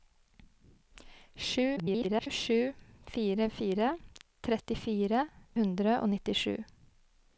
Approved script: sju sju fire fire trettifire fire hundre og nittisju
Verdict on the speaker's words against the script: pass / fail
fail